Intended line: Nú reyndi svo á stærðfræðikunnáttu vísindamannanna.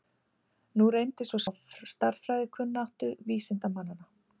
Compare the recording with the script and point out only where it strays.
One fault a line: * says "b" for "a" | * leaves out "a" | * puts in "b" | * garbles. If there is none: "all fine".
all fine